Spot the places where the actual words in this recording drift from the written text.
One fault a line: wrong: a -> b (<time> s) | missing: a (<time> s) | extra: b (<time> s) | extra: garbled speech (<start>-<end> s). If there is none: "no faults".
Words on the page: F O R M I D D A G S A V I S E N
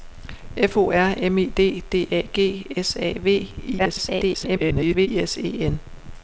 extra: garbled speech (3.8-5.1 s)